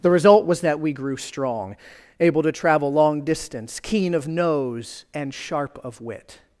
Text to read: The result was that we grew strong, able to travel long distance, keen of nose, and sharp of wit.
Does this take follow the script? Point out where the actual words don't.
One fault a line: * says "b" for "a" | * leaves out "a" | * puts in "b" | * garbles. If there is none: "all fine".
all fine